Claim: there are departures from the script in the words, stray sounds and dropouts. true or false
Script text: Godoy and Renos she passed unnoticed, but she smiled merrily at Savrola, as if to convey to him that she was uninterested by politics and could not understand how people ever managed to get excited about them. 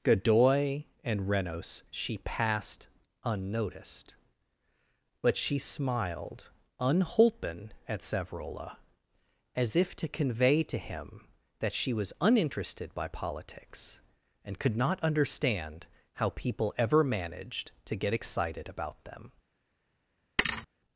true